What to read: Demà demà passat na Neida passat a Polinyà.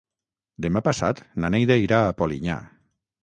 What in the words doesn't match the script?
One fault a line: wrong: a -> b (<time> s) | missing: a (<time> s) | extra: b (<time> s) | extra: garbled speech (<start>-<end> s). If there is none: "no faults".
missing: demà (0.8 s)
wrong: passat -> irà (1.8 s)